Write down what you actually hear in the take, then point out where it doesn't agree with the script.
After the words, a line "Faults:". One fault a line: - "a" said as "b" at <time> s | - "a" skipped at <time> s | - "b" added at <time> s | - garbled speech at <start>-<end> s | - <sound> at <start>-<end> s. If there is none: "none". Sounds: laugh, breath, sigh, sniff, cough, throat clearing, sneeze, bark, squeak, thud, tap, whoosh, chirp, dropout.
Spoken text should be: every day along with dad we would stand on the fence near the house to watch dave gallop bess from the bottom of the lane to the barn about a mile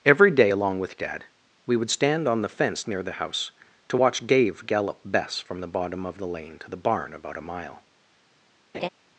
every day along with dad we would stand on the fence near the house to watch dave gallop bess from the bottom of the lane to the barn about a mile
Faults:
- laugh at 8.7-8.9 s